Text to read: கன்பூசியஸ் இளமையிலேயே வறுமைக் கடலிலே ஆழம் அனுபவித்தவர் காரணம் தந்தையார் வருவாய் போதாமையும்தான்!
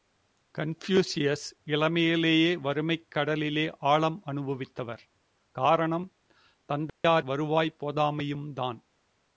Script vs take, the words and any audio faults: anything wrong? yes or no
yes